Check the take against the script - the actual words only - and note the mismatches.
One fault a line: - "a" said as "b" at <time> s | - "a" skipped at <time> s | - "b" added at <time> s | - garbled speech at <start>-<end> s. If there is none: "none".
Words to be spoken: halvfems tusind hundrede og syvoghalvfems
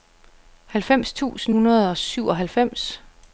none